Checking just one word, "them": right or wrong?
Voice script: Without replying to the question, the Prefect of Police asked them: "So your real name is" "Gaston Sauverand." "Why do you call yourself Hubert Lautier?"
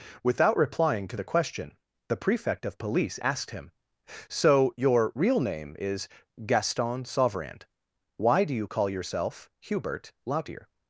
wrong